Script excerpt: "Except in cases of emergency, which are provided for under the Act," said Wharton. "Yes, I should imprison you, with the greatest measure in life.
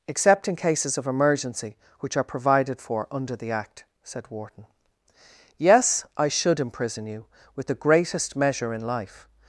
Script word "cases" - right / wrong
right